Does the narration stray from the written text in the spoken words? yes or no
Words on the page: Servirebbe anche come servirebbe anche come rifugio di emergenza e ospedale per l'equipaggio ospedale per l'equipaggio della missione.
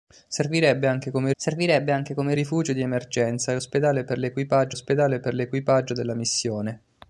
no